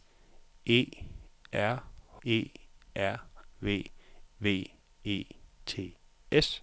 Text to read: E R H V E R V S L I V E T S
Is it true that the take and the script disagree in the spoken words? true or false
true